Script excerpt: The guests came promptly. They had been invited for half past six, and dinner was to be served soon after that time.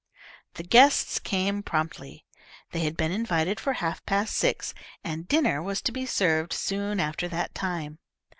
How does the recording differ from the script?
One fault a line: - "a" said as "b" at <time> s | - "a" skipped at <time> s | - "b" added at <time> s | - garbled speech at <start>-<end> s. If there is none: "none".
none